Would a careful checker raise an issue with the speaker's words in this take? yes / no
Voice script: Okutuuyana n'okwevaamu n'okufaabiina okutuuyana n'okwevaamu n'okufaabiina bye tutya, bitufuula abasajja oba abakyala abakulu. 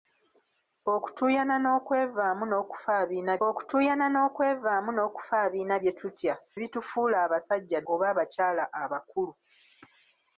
no